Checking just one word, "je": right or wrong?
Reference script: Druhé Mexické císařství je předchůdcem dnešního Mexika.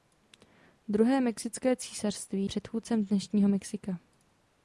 wrong